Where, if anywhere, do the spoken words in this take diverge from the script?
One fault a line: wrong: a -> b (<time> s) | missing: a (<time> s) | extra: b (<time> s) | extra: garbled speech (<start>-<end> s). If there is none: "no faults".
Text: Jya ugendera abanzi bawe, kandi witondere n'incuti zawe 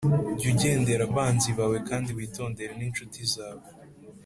no faults